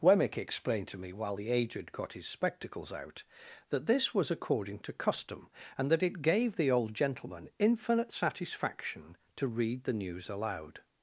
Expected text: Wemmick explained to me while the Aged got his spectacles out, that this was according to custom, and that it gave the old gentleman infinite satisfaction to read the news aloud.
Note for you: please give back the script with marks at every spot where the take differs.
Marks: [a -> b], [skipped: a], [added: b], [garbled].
Wemmick explained to me while the Aged got his spectacles out, that this was according to custom, and that it gave the old gentleman infinite satisfaction to read the news aloud.